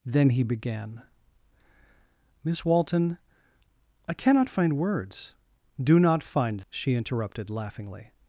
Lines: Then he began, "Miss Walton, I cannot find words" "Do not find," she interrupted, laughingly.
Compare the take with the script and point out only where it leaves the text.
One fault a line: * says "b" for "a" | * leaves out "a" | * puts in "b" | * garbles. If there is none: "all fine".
all fine